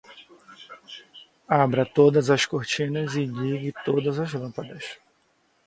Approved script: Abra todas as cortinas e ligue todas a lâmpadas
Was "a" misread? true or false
true